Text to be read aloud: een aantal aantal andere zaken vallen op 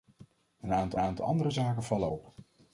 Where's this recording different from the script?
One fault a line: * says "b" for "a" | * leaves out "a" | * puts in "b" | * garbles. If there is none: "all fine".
all fine